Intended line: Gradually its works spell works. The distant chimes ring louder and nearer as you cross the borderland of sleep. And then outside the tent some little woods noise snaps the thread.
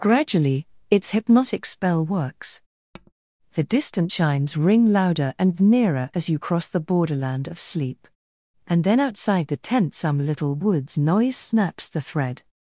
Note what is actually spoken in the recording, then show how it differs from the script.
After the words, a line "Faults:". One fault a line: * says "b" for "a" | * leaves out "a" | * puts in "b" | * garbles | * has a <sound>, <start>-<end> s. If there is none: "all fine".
Gradually its hypnotic spell works. The distant chimes ring louder and nearer as you cross the borderland of sleep. And then outside the tent some little woods noise snaps the thread.
Faults:
* says "hypnotic" for "works"
* has a tap, 2.9-3.1 s